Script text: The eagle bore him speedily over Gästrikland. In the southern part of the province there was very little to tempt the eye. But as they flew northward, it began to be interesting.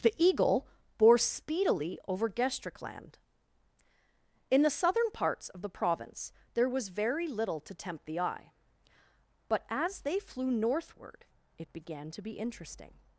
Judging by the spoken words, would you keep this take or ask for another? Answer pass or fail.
fail